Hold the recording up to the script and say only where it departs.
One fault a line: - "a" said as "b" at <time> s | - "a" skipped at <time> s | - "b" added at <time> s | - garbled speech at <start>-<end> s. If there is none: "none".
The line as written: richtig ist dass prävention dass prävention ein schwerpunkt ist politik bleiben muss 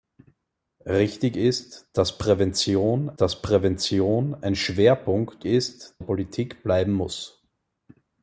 none